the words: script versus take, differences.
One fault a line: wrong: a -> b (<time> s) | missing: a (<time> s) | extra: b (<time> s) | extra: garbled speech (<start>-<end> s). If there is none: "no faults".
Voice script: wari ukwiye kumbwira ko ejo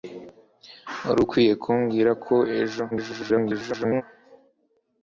extra: garbled speech (2.9-4.0 s)